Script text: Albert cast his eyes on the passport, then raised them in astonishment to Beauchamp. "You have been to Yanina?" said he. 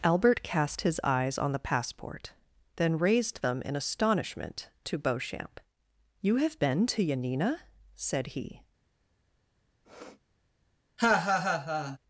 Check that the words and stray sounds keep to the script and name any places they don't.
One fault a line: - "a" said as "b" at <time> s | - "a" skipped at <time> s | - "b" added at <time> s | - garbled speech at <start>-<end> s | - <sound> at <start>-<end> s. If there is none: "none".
- sniff at 9.8-10.2 s
- laugh at 11.0-12.0 s